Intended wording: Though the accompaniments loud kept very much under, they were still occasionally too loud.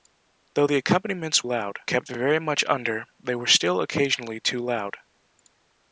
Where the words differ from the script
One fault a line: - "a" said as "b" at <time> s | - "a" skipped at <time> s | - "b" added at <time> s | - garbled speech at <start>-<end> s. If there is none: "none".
none